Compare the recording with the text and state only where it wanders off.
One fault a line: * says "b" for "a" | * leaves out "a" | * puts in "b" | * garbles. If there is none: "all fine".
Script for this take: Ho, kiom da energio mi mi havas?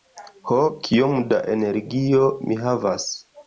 * leaves out "mi"